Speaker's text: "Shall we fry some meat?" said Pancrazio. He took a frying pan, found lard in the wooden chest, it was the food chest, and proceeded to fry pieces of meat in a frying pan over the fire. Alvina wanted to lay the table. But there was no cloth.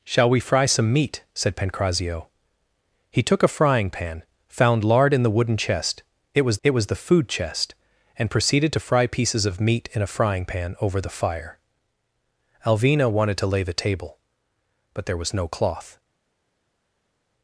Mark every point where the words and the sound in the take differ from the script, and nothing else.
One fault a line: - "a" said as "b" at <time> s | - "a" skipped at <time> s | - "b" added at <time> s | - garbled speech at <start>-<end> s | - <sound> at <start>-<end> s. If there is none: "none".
- "it was" added at 6.6 s